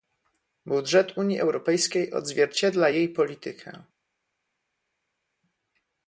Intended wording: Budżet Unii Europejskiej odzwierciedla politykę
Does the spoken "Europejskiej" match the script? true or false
true